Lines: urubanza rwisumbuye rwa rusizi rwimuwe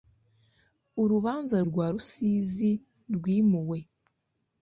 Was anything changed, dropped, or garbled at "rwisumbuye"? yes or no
yes